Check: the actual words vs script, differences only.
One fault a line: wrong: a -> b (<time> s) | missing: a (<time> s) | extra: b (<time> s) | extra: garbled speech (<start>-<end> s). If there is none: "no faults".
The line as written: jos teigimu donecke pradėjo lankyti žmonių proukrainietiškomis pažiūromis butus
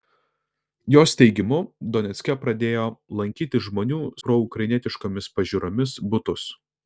no faults